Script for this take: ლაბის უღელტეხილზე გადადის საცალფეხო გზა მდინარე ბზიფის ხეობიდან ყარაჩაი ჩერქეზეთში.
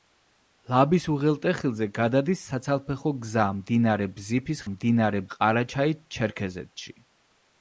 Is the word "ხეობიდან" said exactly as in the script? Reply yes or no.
no